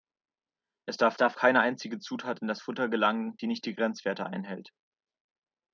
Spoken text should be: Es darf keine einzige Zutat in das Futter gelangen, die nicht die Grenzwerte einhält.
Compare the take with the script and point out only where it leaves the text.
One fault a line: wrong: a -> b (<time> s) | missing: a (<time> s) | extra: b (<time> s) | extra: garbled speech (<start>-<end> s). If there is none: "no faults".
extra: darf (1.2 s)